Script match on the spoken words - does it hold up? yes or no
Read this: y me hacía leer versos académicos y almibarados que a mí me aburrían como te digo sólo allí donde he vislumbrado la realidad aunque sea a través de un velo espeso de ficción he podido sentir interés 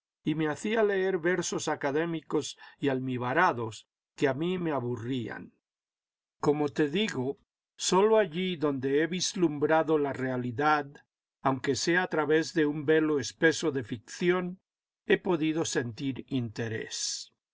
yes